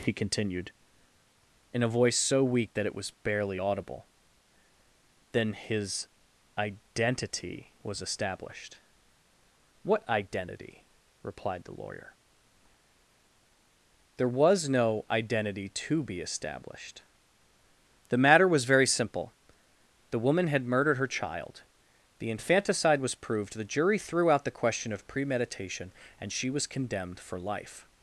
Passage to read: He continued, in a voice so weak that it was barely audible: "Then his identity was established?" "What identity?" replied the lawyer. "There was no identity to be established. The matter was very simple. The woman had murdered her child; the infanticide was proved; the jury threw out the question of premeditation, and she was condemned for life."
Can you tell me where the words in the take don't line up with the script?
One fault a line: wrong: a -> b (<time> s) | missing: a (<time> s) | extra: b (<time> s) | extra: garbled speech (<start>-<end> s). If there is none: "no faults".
no faults